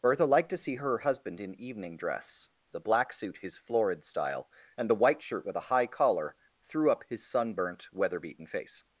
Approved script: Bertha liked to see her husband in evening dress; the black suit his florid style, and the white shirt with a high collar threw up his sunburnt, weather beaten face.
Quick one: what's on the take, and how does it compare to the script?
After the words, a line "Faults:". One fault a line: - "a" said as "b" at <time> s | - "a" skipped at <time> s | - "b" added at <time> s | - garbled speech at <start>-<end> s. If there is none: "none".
Bertha liked to see her husband in evening dress; the black suit his florid style, and the white shirt with a high collar threw up his sunburnt, weather beaten face.
Faults:
none